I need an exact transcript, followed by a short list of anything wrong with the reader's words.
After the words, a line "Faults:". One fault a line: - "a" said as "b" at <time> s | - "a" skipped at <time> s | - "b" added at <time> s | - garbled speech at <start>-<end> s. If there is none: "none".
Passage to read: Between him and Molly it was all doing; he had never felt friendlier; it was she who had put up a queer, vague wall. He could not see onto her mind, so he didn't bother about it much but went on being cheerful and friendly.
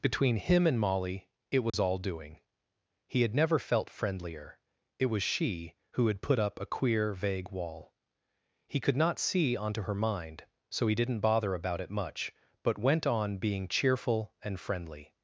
Between him and Molly it was all doing; he had never felt friendlier; it was she who had put up a queer, vague wall. He could not see onto her mind, so he didn't bother about it much but went on being cheerful and friendly.
Faults:
none